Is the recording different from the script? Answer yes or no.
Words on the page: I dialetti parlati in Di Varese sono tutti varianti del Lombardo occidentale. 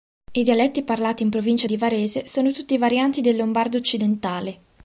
yes